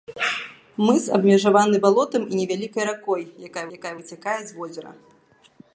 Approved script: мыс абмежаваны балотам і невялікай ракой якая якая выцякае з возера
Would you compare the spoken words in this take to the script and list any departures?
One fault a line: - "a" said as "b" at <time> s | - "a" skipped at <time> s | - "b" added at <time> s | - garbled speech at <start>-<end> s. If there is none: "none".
none